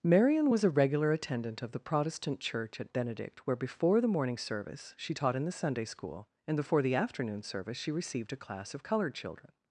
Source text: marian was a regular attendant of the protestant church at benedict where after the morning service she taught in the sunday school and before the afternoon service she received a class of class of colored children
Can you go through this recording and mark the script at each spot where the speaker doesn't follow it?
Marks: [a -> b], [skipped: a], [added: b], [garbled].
marian was a regular attendant of the protestant church at benedict where [after -> before] the morning service she taught in the sunday school and before the afternoon service she received a class of [skipped: class of] colored children